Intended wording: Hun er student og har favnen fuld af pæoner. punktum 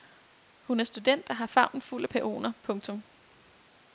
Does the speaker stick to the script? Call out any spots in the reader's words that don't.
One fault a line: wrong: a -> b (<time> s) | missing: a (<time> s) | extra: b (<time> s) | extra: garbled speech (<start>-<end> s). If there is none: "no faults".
no faults